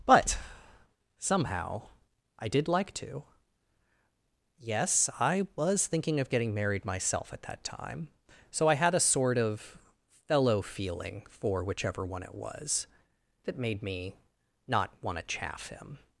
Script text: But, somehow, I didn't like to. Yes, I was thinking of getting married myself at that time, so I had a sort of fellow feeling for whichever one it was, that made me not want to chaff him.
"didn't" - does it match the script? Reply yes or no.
no